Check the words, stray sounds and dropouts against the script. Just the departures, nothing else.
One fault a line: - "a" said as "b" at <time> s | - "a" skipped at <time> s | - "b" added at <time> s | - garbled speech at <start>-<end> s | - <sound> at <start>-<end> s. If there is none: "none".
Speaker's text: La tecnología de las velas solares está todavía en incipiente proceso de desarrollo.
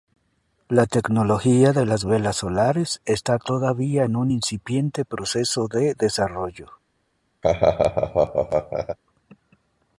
- "un" added at 4.2 s
- laugh at 7.4-9.0 s